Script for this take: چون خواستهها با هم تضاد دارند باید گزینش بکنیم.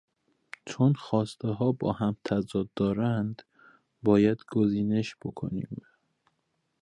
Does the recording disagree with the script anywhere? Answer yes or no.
no